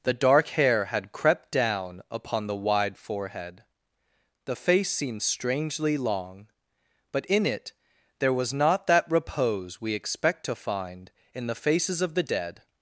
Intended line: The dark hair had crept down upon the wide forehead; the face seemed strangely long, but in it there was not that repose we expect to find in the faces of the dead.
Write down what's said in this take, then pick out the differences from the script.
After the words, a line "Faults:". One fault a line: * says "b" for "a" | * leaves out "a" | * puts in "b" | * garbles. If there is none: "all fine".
The dark hair had crept down upon the wide forehead; the face seemed strangely long, but in it there was not that repose we expect to find in the faces of the dead.
Faults:
all fine